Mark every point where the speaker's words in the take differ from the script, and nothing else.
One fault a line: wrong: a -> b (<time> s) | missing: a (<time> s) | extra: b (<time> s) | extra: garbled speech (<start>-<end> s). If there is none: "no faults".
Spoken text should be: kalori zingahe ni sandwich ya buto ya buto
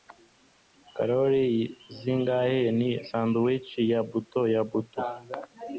no faults